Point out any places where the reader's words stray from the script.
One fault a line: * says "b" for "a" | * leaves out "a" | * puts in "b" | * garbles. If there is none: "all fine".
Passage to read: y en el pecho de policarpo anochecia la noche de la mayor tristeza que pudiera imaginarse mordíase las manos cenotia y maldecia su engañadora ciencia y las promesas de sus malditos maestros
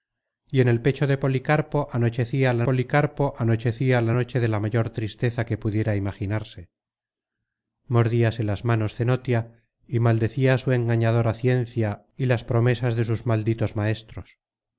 * puts in "policarpo anochecia la"